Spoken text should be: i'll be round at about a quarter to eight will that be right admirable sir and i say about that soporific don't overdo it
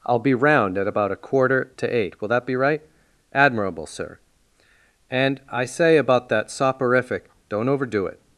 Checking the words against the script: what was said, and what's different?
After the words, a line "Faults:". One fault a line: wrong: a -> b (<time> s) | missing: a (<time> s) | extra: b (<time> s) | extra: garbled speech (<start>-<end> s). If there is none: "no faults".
i'll be round at about a quarter to eight will that be right admirable sir and i say about that soporific don't overdo it
Faults:
no faults